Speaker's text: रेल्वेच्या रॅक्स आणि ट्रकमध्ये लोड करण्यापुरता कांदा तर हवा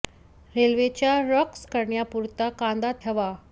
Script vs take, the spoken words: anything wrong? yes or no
yes